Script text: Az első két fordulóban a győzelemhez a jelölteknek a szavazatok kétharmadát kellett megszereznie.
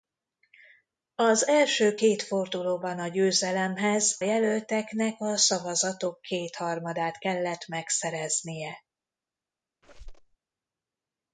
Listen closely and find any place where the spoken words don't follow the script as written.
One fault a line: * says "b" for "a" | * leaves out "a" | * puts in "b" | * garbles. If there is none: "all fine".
* leaves out "a"